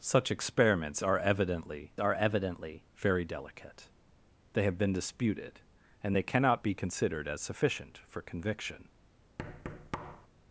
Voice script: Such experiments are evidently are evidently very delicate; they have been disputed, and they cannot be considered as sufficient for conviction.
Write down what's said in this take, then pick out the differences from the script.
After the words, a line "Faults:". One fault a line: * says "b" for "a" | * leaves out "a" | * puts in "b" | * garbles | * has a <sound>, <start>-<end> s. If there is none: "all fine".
Such experiments are evidently are evidently very delicate; they have been disputed, and they cannot be considered as sufficient for conviction.
Faults:
* has a thud, 9.4-10.3 s